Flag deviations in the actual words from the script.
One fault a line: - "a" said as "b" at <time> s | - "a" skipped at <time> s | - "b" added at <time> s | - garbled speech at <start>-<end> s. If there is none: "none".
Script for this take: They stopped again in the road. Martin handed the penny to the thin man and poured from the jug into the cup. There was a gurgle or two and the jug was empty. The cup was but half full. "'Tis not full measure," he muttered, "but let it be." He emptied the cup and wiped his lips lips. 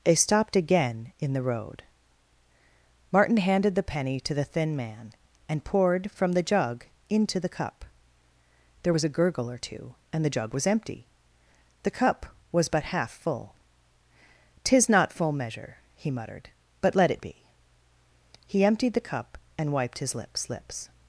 none